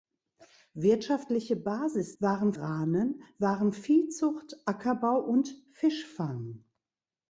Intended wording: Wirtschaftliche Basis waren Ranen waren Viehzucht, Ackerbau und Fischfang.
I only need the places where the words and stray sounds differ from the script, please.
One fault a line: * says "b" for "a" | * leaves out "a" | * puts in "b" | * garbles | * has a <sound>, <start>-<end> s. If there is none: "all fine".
all fine